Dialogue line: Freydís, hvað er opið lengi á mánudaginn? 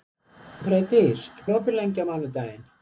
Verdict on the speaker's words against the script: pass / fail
fail